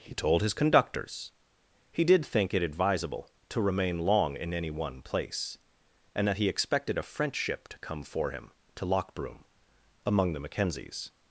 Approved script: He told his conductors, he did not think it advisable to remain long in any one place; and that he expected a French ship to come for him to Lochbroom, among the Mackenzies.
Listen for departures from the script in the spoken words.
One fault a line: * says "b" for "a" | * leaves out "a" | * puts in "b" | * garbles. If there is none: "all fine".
* leaves out "not"